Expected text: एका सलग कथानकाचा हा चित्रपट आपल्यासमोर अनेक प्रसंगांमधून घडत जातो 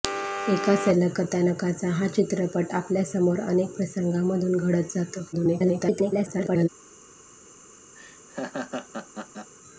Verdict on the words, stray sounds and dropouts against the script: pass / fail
fail